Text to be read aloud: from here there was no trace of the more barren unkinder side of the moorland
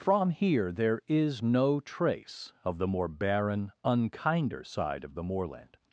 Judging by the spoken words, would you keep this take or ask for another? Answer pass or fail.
fail